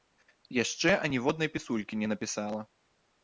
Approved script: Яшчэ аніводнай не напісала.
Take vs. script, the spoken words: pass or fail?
fail